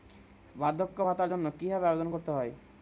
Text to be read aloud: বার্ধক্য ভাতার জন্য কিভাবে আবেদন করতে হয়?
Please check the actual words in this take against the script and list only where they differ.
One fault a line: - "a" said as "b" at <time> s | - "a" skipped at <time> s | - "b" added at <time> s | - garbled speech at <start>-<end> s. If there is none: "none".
none